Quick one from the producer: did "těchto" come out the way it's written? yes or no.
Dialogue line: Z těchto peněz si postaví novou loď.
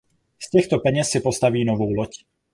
yes